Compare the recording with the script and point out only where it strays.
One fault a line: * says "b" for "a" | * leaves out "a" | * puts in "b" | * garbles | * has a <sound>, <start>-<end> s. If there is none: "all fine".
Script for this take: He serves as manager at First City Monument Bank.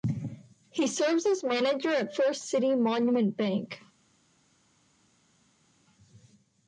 all fine